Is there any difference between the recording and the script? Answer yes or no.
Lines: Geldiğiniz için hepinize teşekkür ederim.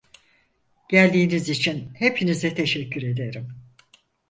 no